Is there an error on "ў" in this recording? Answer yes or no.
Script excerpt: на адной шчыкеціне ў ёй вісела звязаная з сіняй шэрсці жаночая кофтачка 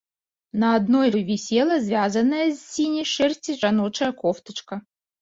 yes